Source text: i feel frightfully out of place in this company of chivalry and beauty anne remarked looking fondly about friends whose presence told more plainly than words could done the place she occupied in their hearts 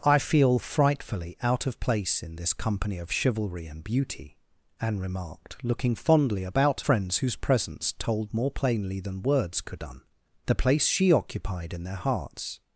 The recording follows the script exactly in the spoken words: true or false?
true